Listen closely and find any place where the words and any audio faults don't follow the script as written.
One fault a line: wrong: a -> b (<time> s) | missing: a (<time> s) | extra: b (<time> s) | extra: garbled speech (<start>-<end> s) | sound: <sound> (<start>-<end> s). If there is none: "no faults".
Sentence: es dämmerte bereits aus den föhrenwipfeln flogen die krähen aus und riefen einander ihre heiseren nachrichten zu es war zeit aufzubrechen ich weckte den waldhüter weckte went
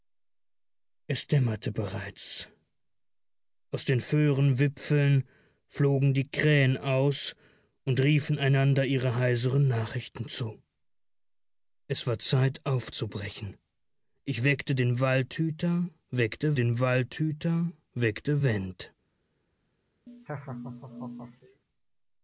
extra: den waldhüter weckte (16.5 s)
sound: laugh (20.1-21.6 s)